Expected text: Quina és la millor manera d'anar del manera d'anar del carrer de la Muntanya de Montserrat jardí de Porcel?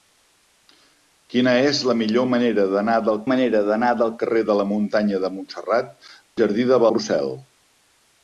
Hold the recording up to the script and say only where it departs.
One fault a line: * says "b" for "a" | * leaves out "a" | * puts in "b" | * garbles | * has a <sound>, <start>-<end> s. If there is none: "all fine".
all fine